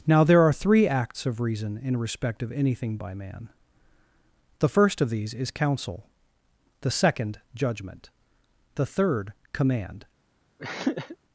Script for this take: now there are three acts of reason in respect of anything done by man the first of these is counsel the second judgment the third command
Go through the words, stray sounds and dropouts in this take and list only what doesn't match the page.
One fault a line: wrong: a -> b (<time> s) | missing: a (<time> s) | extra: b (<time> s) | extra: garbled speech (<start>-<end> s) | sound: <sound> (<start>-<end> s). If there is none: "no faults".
missing: done (3.0 s)
sound: throat clearing (10.6-11.2 s)